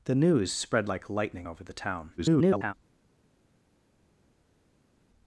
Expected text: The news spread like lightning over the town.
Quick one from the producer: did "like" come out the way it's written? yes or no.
yes